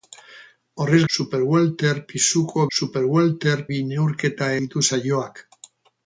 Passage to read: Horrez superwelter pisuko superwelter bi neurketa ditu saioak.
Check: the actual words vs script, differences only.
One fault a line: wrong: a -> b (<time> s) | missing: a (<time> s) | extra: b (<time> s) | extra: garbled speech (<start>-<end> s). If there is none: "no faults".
no faults